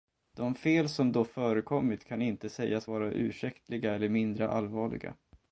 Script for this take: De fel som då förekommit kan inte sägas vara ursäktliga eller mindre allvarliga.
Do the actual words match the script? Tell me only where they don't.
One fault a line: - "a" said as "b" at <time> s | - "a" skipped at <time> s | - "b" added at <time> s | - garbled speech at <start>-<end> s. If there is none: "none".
none